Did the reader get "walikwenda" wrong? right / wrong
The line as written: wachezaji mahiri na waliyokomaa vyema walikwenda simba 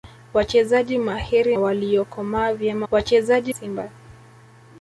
wrong